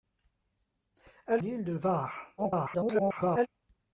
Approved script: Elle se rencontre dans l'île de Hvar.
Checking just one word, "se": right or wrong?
wrong